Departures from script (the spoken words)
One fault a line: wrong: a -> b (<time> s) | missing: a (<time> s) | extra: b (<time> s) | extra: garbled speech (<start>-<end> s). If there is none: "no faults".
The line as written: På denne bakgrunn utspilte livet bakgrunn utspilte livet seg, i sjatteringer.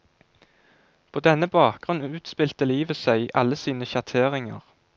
wrong: bakgrunn utspilte livet seg i -> seg i alle sine (3.0 s)